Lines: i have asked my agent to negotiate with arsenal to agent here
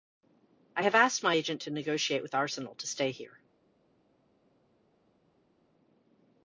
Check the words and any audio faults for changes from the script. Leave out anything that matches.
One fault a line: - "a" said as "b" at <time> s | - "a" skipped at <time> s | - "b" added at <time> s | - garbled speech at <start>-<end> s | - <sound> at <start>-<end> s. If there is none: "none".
- "agent" said as "stay" at 2.9 s